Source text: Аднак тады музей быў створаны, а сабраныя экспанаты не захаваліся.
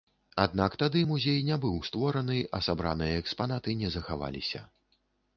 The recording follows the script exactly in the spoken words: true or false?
false